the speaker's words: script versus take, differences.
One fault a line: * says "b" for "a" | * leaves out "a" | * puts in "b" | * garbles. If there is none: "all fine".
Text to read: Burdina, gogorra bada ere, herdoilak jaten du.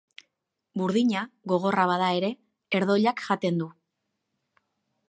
all fine